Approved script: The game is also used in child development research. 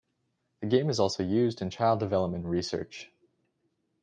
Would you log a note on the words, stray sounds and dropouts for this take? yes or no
no